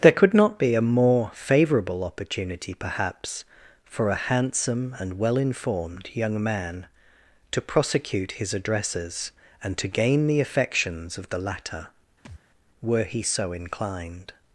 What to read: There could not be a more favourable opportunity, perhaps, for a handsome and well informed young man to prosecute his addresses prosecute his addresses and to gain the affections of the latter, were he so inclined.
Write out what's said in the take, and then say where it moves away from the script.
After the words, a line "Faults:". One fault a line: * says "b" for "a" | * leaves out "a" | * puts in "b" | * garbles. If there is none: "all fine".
There could not be a more favourable opportunity, perhaps, for a handsome and well informed young man to prosecute his addresses and to gain the affections of the latter, were he so inclined.
Faults:
* leaves out "prosecute his addresses"